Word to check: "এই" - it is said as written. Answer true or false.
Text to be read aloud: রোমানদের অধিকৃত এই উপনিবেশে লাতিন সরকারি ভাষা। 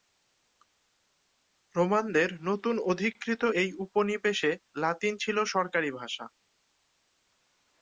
true